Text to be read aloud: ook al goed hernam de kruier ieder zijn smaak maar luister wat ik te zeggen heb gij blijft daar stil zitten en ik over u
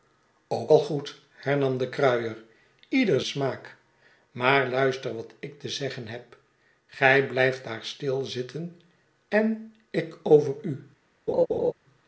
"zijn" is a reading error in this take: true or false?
true